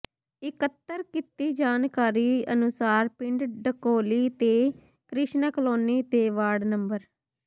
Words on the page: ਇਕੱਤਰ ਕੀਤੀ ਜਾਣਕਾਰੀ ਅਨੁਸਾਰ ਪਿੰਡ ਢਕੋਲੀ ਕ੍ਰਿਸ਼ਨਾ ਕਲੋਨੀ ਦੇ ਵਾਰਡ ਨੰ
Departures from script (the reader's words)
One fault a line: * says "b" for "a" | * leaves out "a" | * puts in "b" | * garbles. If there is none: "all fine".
* puts in "ਤੇ"